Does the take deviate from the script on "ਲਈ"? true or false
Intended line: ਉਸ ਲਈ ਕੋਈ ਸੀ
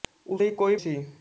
false